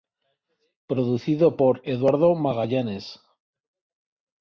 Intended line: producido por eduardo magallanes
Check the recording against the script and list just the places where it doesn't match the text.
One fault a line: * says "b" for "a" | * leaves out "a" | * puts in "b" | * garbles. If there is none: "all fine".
all fine